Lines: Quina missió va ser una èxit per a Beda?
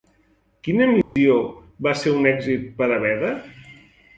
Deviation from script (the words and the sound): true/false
true